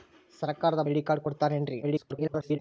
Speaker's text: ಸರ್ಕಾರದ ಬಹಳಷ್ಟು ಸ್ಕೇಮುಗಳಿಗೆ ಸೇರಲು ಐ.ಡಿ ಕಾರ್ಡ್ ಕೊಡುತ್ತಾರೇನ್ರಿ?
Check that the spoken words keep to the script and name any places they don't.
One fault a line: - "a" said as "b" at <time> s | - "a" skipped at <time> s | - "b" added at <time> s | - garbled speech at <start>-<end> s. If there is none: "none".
- "ಬಹಳಷ್ಟು ಸ್ಕೇಮುಗಳಿಗೆ ಸೇರಲು" skipped at 0.8 s
- garbled speech at 1.8-2.6 s